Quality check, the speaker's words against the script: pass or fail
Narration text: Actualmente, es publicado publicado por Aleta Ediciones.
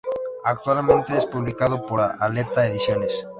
fail